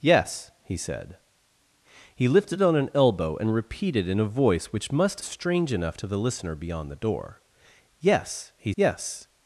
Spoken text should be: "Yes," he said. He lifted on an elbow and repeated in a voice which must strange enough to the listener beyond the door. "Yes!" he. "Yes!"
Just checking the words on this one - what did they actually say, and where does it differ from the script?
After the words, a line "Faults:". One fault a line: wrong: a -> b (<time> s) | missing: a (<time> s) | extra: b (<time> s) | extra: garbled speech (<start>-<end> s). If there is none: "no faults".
"Yes," he said. He lifted on an elbow and repeated in a voice which must strange enough to the listener beyond the door. "Yes!" he. "Yes!"
Faults:
no faults